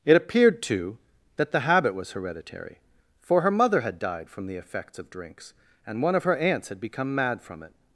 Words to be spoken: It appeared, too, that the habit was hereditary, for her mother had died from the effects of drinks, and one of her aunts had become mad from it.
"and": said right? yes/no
yes